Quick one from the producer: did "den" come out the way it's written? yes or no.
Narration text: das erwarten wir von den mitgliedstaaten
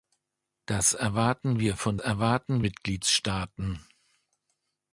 no